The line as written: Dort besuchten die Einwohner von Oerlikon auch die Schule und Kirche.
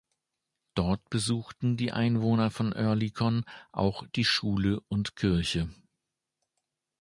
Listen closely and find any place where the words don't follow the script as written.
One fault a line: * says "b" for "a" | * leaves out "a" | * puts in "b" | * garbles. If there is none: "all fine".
all fine